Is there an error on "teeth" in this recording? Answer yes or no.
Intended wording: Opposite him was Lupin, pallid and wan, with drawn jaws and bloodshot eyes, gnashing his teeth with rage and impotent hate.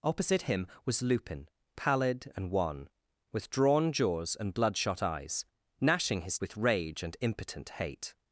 yes